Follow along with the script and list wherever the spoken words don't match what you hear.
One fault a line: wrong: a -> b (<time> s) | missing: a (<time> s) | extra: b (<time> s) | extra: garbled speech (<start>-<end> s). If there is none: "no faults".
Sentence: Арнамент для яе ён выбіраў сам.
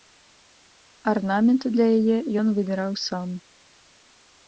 no faults